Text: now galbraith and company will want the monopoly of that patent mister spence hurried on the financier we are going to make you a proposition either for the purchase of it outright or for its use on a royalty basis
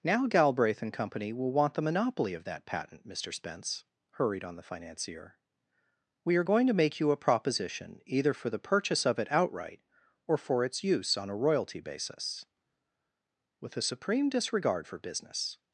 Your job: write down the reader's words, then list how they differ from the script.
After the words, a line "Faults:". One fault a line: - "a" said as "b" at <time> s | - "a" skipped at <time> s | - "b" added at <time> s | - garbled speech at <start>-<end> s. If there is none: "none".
now galbraith and company will want the monopoly of that patent mister spence hurried on the financier we are going to make you a proposition either for the purchase of it outright or for its use on a royalty basis with a supreme disregard for business
Faults:
- "with a supreme disregard for business" added at 13.6 s